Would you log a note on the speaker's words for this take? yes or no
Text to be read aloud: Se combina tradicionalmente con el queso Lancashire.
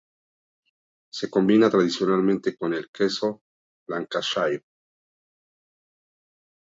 no